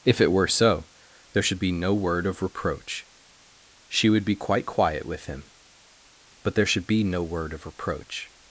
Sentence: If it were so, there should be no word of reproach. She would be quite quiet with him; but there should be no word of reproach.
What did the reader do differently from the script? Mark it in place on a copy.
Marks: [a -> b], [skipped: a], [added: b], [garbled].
If it were so, there should be no word of reproach. She would be quite quiet with him; but there should be no word of reproach.